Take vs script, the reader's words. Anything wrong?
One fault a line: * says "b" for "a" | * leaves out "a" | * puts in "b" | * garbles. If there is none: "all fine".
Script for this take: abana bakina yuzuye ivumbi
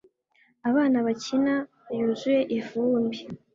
all fine